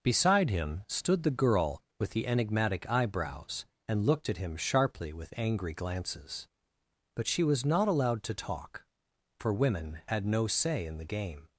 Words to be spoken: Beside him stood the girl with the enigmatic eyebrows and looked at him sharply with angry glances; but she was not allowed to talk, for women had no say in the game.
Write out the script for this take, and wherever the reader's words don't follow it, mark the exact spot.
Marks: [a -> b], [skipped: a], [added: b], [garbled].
Beside him stood the girl with the enigmatic eyebrows and looked at him sharply with angry glances; but she was not allowed to talk, for women had no say in the game.